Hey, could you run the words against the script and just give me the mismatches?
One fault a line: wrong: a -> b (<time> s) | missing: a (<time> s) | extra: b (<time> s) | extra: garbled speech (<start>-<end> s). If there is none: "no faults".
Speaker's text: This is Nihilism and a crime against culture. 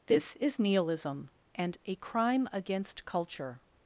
no faults